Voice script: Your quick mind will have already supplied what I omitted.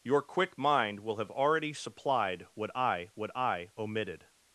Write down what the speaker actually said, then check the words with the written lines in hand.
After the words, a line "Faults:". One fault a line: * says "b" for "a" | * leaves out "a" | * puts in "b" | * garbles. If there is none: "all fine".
Your quick mind will have already supplied what I what I omitted.
Faults:
* puts in "what I"